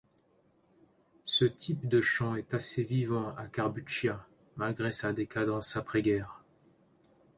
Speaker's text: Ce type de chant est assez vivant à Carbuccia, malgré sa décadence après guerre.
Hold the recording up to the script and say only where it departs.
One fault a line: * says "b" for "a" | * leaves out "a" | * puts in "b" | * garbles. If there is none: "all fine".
all fine